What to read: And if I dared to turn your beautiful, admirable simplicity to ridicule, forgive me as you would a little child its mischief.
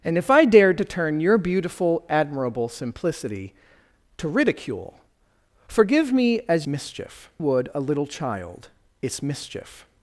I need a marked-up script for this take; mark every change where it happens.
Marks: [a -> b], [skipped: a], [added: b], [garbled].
And if I dared to turn your beautiful, admirable simplicity to ridicule, forgive me as [you -> mischief] would a little child its mischief.